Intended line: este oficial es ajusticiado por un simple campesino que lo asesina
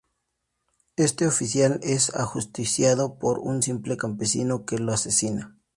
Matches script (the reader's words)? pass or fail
pass